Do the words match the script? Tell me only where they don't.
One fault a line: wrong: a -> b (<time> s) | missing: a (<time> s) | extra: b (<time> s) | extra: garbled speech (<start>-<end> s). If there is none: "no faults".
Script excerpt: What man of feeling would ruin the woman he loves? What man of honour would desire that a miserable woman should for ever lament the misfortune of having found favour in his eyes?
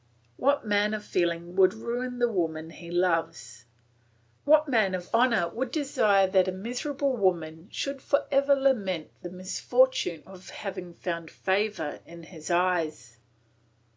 no faults